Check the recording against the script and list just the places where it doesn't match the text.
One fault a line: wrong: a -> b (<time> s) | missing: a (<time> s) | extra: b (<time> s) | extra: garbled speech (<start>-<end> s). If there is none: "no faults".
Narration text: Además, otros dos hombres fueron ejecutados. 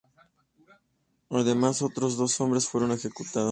no faults